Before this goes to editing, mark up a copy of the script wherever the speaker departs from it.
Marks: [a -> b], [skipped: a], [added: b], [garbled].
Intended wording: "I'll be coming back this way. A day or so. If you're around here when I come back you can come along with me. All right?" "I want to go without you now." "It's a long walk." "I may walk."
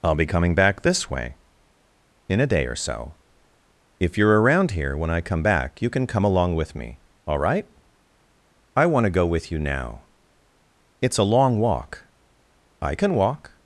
"I'll be coming back this way. [added: In] A day or so. If you're around here when I come back you can come along with me. All right?" "I want to go [without -> with] you now." "It's a long walk." "I [may -> can] walk."